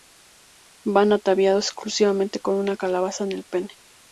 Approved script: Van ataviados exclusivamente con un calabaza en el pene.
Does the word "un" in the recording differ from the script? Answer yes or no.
yes